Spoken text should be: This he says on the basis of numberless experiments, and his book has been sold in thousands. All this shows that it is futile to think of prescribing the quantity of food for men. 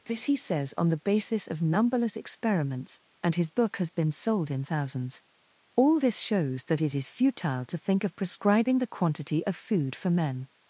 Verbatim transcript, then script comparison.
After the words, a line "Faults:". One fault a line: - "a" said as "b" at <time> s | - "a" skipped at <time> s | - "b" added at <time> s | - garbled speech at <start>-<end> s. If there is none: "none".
This he says on the basis of numberless experiments, and his book has been sold in thousands. All this shows that it is futile to think of prescribing the quantity of food for men.
Faults:
none